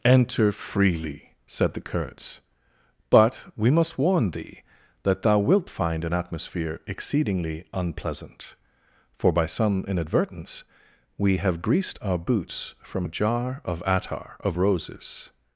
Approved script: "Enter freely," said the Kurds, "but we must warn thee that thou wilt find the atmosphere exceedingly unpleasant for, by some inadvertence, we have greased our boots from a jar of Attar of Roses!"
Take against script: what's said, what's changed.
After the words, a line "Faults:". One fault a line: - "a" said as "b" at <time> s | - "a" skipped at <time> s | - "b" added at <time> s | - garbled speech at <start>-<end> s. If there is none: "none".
"Enter freely," said the Kurds, "but we must warn thee that thou wilt find an atmosphere exceedingly unpleasant for, by some inadvertence, we have greased our boots from a jar of Attar of Roses!"
Faults:
- "the" said as "an" at 6.0 s